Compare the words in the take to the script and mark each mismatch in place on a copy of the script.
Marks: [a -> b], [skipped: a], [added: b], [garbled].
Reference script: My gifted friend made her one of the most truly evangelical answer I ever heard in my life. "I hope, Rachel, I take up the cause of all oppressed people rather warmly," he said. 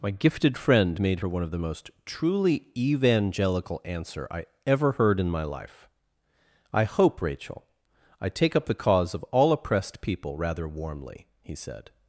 My gifted friend made her one of the most truly evangelical answer I ever heard in my life. "I hope, Rachel, I take up the cause of all oppressed people rather warmly," he said.